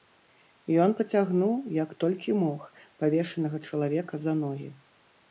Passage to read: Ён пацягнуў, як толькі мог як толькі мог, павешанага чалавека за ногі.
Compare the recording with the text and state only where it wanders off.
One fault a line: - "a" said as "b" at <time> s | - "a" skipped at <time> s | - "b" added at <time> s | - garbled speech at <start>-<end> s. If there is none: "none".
- "як толькі мог" skipped at 2.6 s